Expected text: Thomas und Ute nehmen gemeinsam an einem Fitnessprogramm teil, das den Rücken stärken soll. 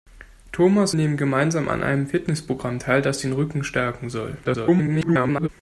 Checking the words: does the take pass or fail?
fail